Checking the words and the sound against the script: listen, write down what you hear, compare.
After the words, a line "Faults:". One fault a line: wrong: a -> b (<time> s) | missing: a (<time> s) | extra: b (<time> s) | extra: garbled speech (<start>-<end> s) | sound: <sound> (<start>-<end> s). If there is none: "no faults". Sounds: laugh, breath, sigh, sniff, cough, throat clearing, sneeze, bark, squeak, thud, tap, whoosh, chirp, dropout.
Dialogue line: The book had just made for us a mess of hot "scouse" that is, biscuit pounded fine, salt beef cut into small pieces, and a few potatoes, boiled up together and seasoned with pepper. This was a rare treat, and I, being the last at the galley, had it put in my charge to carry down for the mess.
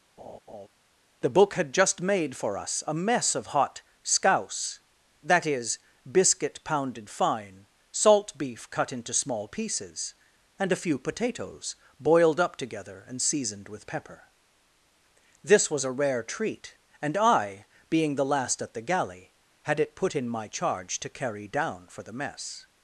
The book had just made for us a mess of hot "scouse" that is, biscuit pounded fine, salt beef cut into small pieces, and a few potatoes, boiled up together and seasoned with pepper. This was a rare treat, and I, being the last at the galley, had it put in my charge to carry down for the mess.
Faults:
sound: laugh (0.2-0.7 s)